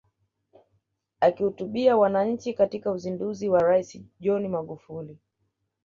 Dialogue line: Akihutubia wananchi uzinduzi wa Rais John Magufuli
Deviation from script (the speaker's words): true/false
true